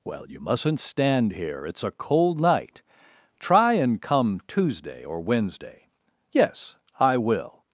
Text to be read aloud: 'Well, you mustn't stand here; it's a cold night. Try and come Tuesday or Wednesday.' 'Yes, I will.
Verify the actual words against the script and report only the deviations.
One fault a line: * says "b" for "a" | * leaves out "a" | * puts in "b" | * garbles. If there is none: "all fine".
all fine